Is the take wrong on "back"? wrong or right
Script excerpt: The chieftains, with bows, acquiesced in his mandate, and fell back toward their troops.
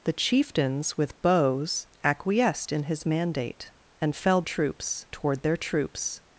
wrong